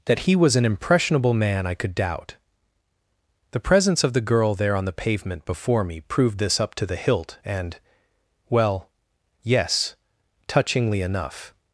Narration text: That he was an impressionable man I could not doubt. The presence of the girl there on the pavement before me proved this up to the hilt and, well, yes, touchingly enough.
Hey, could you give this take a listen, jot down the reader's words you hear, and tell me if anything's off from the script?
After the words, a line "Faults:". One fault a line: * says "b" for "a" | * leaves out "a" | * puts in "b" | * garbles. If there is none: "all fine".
That he was an impressionable man I could doubt. The presence of the girl there on the pavement before me proved this up to the hilt and, well, yes, touchingly enough.
Faults:
* leaves out "not"